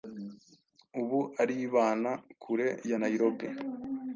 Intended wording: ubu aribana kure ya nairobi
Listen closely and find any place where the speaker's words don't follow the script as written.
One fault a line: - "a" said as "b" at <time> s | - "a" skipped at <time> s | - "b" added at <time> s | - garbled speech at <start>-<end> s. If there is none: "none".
none